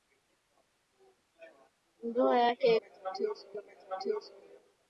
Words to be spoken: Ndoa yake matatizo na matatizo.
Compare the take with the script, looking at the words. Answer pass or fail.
pass